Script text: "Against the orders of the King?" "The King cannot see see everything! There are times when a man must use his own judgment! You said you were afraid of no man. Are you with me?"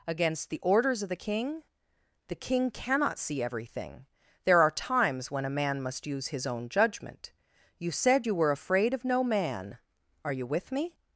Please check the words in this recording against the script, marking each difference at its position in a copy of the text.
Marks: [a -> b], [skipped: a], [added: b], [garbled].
"Against the orders of the King?" "The King cannot see [skipped: see] everything! There are times when a man must use his own judgment! You said you were afraid of no man. Are you with me?"